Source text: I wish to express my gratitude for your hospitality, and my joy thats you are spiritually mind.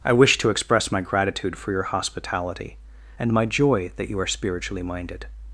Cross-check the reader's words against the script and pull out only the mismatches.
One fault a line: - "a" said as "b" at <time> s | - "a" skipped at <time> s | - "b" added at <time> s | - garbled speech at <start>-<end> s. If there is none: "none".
- "thats" said as "that" at 4.0 s
- "mind" said as "minded" at 4.8 s